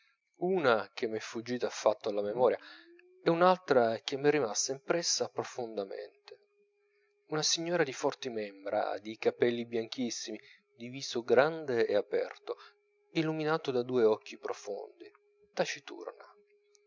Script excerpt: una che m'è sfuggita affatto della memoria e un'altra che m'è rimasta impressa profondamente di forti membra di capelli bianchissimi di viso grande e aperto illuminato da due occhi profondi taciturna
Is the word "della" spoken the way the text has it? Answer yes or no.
no